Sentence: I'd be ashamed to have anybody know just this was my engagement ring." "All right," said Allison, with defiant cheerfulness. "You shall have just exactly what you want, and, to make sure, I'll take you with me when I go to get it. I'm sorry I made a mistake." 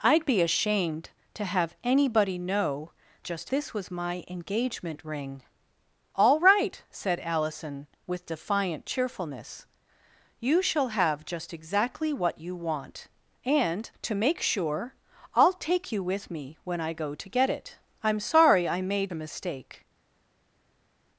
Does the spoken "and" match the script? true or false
true